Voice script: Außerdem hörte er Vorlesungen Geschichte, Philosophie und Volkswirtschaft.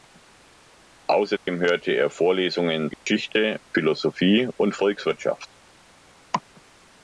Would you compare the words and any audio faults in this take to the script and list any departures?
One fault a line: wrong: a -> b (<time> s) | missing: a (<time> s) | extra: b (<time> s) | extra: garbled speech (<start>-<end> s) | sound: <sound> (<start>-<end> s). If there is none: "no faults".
sound: dropout (1.4-1.5 s)
sound: dropout (2.9-3.1 s)